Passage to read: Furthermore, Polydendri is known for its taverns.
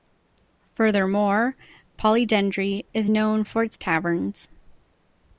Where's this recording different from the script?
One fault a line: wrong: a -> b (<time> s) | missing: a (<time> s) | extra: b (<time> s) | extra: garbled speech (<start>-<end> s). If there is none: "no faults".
no faults